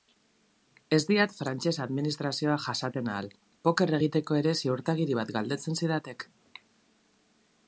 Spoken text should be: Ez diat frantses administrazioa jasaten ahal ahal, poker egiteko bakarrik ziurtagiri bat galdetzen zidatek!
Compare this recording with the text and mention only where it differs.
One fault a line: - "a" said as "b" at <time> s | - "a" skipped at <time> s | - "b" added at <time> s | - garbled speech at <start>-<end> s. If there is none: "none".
- "ahal" skipped at 3.3 s
- "bakarrik" said as "ere" at 4.4 s